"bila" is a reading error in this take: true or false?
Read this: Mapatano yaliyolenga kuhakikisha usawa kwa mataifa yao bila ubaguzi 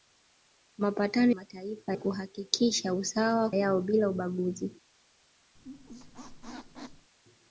false